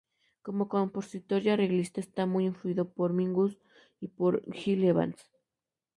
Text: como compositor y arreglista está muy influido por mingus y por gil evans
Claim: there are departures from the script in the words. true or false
false